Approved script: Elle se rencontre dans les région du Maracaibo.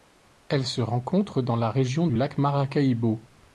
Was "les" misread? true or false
true